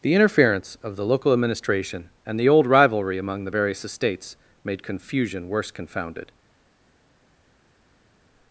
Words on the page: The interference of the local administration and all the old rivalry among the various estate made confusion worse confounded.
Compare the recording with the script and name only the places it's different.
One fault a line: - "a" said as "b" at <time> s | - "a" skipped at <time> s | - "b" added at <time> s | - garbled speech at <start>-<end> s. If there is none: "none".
- "all" skipped at 2.4 s
- "estate" said as "estates" at 3.8 s